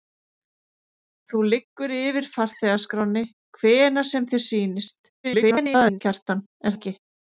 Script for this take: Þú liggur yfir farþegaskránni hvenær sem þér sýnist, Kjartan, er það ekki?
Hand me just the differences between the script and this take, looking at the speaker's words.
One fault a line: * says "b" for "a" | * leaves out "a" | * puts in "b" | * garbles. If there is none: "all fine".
* garbles
* leaves out "það"